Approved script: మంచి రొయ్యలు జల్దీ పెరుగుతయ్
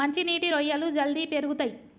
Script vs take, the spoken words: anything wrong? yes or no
yes